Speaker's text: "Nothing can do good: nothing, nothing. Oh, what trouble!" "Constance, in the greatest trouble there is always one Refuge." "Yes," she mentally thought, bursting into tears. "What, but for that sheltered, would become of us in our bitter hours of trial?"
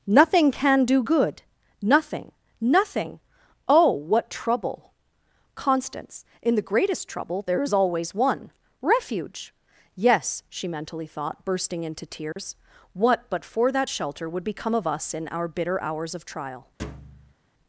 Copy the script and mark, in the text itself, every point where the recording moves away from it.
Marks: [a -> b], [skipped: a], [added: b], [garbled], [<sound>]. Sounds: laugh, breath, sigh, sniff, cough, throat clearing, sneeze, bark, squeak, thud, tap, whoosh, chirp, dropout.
"Nothing can do good: nothing, nothing. Oh, what trouble!" "Constance, in the greatest trouble there is always one Refuge." "Yes," she mentally thought, bursting into tears. [dropout] "What, but for that [sheltered, -> shelter] would become of us in our bitter hours of trial?" [thud]